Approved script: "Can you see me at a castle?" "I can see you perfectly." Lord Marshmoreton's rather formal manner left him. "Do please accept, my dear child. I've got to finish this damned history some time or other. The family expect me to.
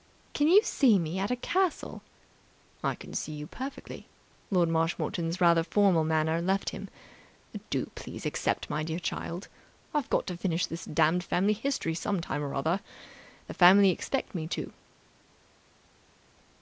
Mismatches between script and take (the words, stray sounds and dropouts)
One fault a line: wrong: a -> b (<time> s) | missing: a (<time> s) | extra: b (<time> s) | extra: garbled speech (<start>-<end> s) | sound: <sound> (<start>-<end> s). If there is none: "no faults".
extra: family (11.2 s)